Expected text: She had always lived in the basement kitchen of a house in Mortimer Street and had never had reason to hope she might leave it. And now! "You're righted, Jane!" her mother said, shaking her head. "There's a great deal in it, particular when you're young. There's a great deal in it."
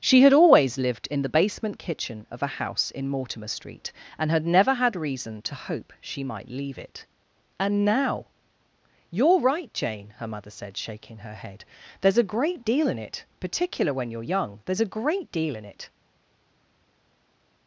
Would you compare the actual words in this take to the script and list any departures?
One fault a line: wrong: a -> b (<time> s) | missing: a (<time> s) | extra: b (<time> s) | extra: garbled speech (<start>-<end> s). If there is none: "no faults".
wrong: righted -> right (9.4 s)